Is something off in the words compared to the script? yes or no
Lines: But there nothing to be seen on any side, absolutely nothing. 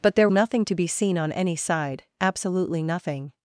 no